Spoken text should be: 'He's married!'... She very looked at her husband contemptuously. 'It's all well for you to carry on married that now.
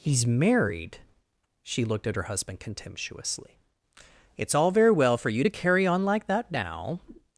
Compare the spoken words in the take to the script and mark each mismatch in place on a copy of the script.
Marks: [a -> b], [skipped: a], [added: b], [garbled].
'He's married!'... She [skipped: very] looked at her husband contemptuously. 'It's all [added: very] well for you to carry on [married -> like] that now.